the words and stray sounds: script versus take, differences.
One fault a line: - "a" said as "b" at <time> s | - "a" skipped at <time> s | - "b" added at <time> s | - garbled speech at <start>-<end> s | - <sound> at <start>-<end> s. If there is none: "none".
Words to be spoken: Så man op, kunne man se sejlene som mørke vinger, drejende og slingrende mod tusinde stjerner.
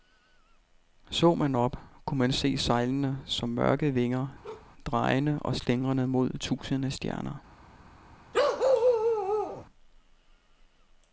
- bark at 4.4-4.7 s
- bark at 8.3-9.7 s